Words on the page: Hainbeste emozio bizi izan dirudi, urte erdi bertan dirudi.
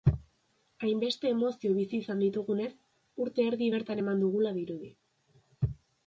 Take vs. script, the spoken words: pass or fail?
fail